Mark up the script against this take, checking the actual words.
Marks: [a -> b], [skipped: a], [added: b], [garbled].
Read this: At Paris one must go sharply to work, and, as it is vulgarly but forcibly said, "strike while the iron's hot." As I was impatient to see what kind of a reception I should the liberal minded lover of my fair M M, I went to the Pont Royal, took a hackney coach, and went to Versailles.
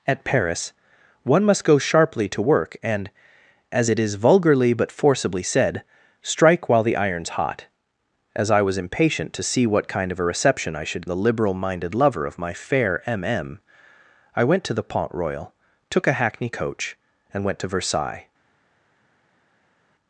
At Paris one must go sharply to work, and, as it is vulgarly but forcibly said, "strike while the iron's hot." As I was impatient to see what kind of a reception I should the liberal minded lover of my fair M M, I went to the Pont Royal, took a hackney coach, and went to Versailles.